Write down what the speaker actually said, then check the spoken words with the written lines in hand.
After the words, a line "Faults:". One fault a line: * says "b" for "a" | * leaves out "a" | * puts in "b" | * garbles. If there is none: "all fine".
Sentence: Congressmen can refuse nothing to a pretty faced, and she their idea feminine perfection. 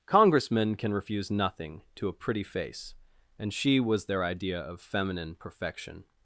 Congressmen can refuse nothing to a pretty face, and she was their idea of feminine perfection.
Faults:
* says "face" for "faced"
* puts in "was"
* puts in "of"